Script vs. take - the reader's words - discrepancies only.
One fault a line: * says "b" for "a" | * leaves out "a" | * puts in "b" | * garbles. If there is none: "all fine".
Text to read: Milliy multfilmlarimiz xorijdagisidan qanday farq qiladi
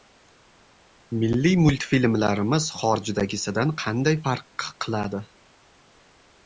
all fine